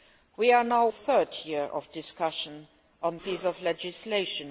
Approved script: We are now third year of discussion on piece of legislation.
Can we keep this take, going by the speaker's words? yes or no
yes